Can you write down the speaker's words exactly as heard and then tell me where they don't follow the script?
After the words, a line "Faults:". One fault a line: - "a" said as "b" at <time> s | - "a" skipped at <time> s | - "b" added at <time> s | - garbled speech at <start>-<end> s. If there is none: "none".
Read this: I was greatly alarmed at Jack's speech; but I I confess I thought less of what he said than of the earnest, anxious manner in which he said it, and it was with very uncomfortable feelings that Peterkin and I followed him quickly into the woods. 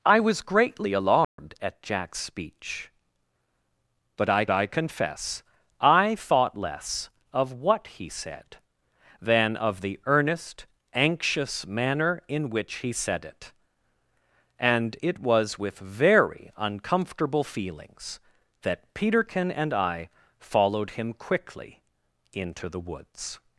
I was greatly alarmed at Jack's speech; but I I confess I thought less of what he said than of the earnest, anxious manner in which he said it, and it was with very uncomfortable feelings that Peterkin and I followed him quickly into the woods.
Faults:
none